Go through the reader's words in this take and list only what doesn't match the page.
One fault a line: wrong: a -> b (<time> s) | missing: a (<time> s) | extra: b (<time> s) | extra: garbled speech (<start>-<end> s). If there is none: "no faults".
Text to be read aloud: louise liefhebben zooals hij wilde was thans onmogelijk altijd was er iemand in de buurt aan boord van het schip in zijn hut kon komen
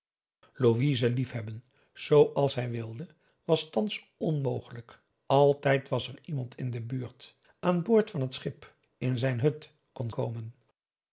no faults